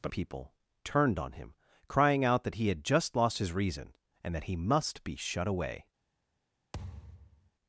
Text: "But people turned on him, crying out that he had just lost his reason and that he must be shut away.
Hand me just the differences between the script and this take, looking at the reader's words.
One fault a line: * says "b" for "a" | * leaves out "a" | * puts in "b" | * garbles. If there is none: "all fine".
all fine